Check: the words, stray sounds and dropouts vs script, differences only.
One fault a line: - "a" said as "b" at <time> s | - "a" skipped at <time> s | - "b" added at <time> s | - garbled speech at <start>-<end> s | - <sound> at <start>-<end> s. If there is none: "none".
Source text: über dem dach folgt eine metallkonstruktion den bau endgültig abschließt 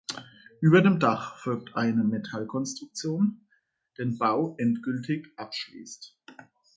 none